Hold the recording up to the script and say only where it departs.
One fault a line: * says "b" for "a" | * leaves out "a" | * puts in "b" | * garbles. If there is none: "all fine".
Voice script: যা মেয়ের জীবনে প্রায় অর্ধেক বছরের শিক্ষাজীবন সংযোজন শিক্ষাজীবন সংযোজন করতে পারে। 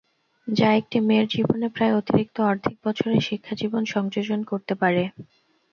* puts in "একটি"
* puts in "অতিরিক্ত"
* leaves out "শিক্ষাজীবন সংযোজন"